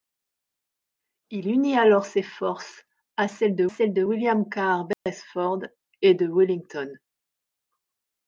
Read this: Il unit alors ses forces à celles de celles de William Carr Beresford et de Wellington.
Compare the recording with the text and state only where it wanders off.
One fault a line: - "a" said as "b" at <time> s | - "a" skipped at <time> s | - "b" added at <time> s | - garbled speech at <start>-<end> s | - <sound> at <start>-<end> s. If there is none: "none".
- dropout at 4.9-5.1 s